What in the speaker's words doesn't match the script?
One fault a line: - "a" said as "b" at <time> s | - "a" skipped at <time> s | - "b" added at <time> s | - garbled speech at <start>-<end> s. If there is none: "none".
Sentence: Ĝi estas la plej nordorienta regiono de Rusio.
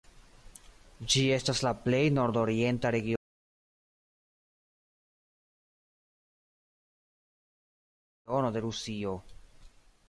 none